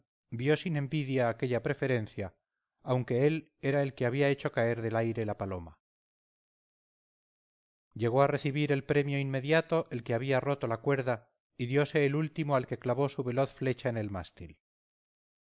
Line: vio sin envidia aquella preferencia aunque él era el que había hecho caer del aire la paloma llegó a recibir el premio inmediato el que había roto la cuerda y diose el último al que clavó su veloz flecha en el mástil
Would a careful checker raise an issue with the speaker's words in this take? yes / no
no